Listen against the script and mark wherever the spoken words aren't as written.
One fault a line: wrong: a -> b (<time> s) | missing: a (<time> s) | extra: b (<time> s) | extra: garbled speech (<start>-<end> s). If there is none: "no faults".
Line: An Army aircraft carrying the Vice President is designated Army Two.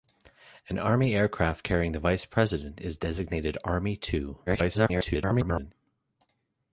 extra: garbled speech (4.5-5.7 s)